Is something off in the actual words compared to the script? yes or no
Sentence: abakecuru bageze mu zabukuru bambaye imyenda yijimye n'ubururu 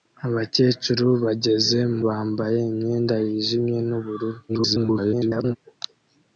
yes